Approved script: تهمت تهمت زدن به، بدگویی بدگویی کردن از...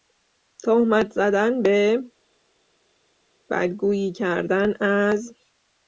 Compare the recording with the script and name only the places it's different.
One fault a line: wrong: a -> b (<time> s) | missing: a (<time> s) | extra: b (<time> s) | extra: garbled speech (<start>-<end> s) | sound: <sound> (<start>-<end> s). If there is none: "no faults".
missing: تهمت (1.1 s)
missing: بدگویی (4.1 s)